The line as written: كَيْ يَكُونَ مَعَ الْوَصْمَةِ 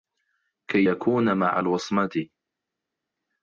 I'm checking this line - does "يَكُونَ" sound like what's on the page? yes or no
yes